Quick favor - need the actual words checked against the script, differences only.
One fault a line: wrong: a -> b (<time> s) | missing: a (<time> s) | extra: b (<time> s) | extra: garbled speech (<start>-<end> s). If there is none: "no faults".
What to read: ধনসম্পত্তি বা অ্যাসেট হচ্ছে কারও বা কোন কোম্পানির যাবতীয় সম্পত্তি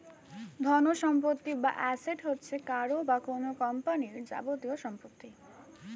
no faults